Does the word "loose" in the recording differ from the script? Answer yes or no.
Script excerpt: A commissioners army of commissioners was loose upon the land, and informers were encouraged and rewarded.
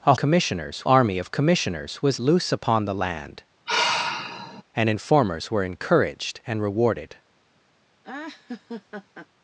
no